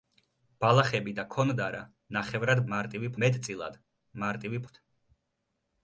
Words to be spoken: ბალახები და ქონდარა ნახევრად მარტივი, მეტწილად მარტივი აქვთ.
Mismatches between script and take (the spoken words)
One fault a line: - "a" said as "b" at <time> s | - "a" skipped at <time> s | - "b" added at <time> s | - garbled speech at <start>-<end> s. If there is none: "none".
none